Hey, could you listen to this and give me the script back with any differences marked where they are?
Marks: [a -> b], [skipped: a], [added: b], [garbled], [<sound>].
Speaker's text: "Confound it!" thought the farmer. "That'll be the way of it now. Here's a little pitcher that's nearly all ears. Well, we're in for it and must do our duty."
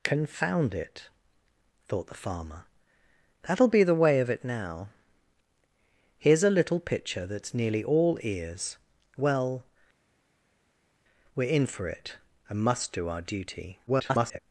"Confound it!" thought the farmer. "That'll be the way of it now. Here's a little pitcher that's nearly all ears. Well, we're in for it and must do our duty." [garbled]